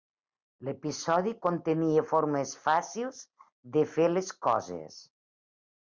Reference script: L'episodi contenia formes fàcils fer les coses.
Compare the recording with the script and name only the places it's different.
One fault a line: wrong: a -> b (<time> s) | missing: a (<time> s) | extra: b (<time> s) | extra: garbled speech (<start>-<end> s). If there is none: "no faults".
extra: de (3.8 s)